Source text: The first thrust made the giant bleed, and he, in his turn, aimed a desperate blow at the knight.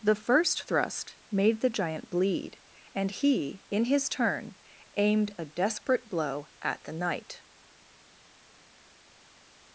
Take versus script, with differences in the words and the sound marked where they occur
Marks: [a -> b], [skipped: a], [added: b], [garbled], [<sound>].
The first thrust made the giant bleed, and he, in his turn, aimed a desperate blow at the knight.